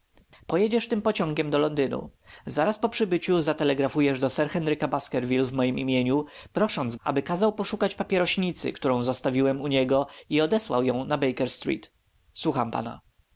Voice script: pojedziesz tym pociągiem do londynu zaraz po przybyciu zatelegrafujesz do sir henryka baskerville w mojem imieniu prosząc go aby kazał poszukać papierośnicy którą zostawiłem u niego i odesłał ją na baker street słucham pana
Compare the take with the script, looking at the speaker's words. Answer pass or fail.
fail